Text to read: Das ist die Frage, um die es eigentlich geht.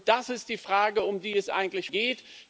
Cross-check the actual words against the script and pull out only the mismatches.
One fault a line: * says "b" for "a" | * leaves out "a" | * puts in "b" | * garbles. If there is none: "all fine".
all fine